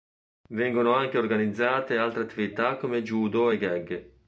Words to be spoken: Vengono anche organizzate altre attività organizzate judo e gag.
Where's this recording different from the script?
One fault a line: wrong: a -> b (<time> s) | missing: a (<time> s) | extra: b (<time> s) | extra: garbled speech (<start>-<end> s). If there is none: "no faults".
wrong: organizzate -> come (2.8 s)